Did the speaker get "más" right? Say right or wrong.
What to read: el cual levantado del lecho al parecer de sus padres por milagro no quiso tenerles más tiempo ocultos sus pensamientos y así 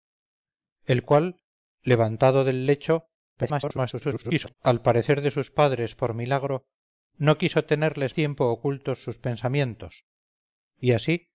wrong